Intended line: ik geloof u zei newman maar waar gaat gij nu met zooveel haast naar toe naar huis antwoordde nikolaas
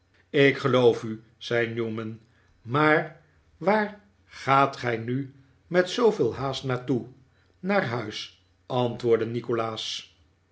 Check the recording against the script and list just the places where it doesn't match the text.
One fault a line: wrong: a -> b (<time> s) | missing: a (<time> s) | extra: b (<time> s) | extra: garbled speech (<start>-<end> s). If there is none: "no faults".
no faults